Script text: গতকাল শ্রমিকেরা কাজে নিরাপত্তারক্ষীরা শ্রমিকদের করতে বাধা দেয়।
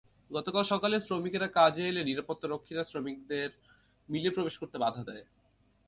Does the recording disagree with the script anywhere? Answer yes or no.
yes